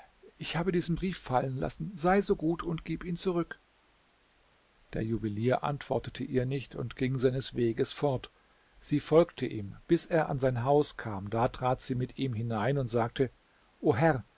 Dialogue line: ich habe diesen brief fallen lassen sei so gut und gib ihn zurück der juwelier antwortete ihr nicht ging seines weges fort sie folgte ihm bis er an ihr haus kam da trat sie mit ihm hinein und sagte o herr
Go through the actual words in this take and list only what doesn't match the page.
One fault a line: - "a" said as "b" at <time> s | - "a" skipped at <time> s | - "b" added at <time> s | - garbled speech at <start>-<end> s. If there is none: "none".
- "und" added at 6.7 s
- "ihr" said as "sein" at 10.4 s